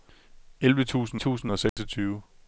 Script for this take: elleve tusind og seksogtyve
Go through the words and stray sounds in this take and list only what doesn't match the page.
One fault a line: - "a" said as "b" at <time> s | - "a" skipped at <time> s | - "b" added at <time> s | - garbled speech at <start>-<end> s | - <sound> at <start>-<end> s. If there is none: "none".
- "tusind" added at 1.2 s
- dropout at 1.7-1.8 s